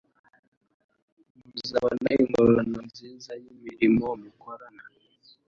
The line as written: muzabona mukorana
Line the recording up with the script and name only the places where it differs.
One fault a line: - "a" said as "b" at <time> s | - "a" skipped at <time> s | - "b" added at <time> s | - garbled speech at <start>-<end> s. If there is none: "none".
- "ingororano nziza y'imirimo" added at 2.2 s